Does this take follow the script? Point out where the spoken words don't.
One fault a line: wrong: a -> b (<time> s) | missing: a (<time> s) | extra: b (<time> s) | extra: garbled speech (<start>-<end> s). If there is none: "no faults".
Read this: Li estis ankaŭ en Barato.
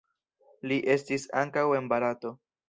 no faults